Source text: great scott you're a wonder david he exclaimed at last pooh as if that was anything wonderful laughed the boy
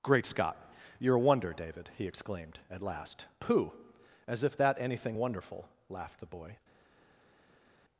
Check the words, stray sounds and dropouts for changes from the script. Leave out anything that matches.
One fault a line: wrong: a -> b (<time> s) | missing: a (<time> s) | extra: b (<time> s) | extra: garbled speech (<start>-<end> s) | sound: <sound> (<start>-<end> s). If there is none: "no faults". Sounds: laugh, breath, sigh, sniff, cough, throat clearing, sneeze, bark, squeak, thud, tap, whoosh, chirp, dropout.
missing: was (4.8 s)